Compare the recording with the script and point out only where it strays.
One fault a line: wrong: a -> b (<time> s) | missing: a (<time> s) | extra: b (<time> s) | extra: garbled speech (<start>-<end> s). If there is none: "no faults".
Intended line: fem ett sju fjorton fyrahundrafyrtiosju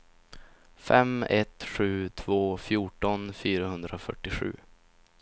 extra: två (2.1 s)